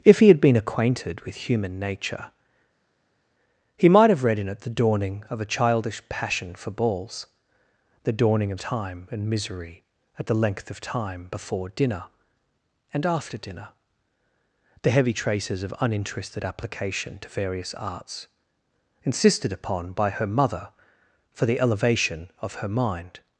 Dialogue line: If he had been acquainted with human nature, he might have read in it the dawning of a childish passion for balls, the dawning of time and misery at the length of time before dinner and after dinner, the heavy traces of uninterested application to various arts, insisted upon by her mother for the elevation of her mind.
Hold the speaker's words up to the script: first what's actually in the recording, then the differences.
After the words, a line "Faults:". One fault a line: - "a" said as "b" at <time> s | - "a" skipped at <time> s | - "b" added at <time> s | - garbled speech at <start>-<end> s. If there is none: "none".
If he had been acquainted with human nature, he might have read in it the dawning of a childish passion for balls, the dawning of time and misery at the length of time before dinner and after dinner, the heavy traces of uninterested application to various arts, insisted upon by her mother for the elevation of her mind.
Faults:
none